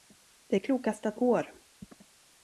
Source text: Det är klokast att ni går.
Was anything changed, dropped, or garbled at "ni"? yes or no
yes